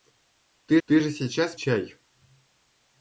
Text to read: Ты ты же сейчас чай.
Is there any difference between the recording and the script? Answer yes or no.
no